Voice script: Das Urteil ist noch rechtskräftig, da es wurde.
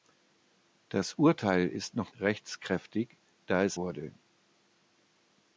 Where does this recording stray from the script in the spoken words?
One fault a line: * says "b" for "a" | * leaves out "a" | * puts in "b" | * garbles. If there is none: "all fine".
all fine